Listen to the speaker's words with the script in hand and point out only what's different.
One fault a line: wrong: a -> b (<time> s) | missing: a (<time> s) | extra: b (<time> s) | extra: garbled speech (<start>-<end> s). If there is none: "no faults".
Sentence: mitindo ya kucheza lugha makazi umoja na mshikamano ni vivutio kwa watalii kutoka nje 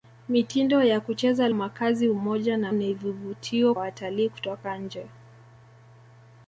missing: lugha (1.5 s)
missing: mshikamano (2.7 s)
missing: kwa (3.7 s)